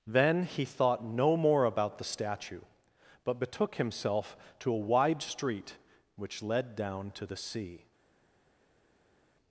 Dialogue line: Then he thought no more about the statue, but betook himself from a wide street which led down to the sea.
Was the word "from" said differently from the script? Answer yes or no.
yes